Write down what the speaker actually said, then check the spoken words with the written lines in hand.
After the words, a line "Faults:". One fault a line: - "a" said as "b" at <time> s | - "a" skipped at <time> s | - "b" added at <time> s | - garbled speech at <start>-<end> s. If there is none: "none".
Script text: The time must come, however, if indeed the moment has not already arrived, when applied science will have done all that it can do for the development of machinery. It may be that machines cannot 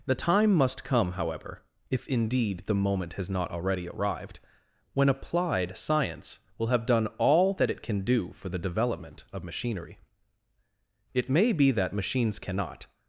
The time must come, however, if indeed the moment has not already arrived, when applied science will have done all that it can do for the development of machinery. It may be that machines cannot
Faults:
none